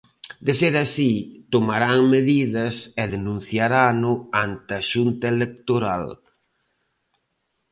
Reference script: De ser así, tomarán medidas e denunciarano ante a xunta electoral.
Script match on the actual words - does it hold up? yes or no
yes